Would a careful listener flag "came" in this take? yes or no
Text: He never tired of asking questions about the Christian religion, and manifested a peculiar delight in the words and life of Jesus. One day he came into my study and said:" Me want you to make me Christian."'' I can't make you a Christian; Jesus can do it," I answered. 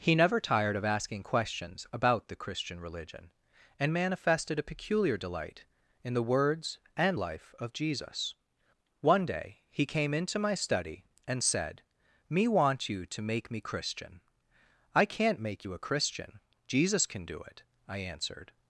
no